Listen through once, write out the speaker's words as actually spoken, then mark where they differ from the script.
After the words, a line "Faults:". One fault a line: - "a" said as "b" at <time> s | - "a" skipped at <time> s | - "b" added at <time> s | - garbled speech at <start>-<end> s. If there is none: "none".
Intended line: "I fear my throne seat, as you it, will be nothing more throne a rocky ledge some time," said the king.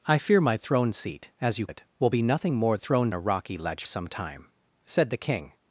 "I fear my throne seat, as you it, will be nothing more throne a rocky ledge some time," said the king.
Faults:
none